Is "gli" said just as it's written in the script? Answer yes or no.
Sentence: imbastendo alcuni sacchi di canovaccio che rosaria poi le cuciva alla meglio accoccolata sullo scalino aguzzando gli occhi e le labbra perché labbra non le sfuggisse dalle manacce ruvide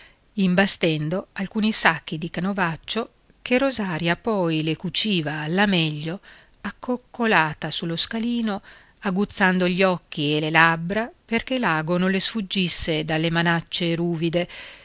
yes